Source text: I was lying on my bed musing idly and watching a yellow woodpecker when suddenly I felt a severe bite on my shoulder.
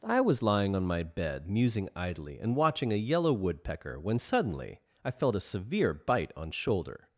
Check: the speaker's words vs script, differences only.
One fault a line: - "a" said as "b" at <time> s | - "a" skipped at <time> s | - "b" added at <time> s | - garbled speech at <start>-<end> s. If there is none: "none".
- "my" skipped at 6.5 s